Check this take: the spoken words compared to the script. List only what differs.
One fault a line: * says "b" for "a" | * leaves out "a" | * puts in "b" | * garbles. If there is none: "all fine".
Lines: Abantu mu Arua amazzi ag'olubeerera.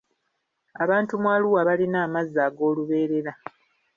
* puts in "balina"